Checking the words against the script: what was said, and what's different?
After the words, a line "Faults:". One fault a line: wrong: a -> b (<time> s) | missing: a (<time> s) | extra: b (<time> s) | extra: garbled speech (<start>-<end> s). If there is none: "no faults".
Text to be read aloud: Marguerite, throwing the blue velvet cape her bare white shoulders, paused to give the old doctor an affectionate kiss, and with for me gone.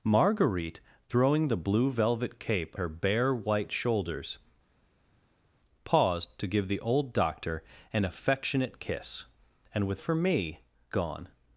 Marguerite, throwing the blue velvet cape her bare white shoulders, paused to give the old doctor an affectionate kiss, and with for me gone.
Faults:
no faults